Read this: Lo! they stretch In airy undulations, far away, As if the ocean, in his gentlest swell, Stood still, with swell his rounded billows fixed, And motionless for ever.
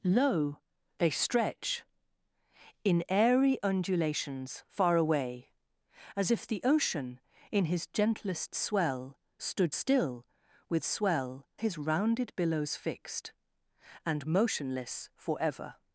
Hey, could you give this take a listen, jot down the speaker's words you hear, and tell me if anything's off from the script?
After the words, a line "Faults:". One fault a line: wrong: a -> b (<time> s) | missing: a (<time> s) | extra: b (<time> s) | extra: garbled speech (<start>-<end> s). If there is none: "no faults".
Lo! they stretch In airy undulations, far away, As if the ocean, in his gentlest swell, Stood still, with swell his rounded billows fixed, And motionless for ever.
Faults:
no faults